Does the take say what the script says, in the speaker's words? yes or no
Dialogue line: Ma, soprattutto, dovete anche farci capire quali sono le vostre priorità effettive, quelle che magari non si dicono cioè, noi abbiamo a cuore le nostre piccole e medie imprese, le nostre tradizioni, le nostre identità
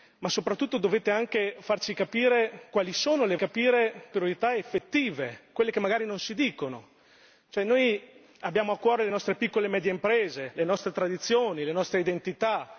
no